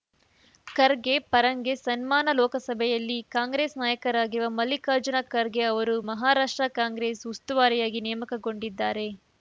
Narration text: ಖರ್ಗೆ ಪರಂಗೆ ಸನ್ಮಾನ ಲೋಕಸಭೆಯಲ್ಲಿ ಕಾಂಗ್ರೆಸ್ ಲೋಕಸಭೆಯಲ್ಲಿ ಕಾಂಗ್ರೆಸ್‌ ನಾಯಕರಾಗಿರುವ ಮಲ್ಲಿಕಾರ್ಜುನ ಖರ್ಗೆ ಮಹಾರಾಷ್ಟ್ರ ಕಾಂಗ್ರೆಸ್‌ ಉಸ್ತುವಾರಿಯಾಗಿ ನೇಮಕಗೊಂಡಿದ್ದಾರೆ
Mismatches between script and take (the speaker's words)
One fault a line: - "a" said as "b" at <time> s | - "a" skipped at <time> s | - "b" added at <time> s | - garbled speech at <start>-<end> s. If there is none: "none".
- "ಲೋಕಸಭೆಯಲ್ಲಿ ಕಾಂಗ್ರೆಸ್" skipped at 3.8 s
- "ಅವರು" added at 5.7 s